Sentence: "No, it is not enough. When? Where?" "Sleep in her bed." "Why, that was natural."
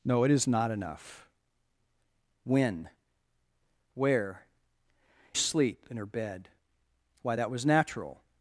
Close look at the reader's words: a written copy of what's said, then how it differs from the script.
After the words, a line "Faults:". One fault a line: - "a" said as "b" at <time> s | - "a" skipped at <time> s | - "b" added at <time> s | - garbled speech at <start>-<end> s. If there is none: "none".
"No, it is not enough. When? Where?" "Sleep in her bed." "Why, that was natural."
Faults:
none